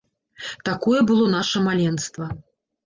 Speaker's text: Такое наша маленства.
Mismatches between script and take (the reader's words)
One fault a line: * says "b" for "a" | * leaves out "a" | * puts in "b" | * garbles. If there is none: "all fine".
* puts in "было"